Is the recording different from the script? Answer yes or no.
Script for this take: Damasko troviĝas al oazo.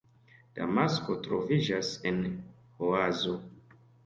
yes